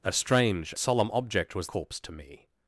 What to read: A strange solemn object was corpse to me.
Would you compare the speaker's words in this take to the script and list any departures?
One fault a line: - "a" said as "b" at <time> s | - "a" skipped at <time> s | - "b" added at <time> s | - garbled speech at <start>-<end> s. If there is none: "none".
none